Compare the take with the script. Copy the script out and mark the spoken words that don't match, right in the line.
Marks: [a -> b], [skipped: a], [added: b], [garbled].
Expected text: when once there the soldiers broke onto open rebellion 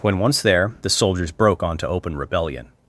when once there the soldiers broke onto open rebellion